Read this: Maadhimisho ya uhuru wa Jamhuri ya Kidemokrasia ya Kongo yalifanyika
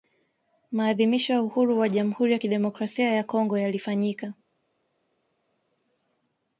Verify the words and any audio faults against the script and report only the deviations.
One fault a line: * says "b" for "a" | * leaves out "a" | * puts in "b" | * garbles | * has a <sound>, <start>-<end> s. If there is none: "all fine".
all fine